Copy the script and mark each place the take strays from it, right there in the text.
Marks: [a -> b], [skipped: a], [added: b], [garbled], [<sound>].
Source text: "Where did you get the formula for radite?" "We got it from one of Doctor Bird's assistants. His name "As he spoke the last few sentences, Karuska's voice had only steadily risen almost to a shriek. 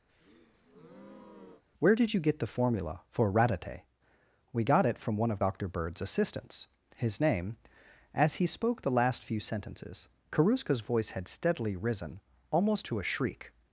[breath] "Where did you get the formula for radite?" "We got it from one of Doctor Bird's assistants. His name "As he spoke the last few sentences, Karuska's voice had [skipped: only] steadily risen almost to a shriek.